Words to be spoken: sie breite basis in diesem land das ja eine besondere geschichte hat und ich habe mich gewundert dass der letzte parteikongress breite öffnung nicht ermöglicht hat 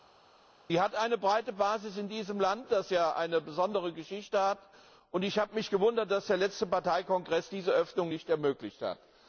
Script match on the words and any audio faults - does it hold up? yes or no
no